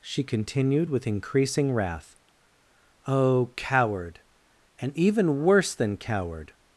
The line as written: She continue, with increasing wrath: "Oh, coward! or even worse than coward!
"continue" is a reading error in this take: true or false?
true